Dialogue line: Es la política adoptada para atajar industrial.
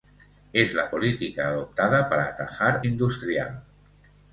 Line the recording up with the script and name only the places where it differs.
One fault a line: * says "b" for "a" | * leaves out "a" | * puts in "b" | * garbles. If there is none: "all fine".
all fine